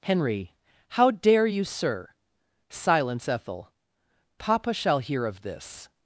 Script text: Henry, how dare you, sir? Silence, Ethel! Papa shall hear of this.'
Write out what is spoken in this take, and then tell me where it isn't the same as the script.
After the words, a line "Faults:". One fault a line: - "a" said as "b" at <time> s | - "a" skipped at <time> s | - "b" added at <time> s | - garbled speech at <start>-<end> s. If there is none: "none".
Henry, how dare you, sir? Silence, Ethel! Papa shall hear of this.'
Faults:
none